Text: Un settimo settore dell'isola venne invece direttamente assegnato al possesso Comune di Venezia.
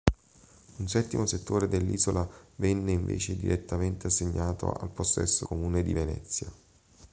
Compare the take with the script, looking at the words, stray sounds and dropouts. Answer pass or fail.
pass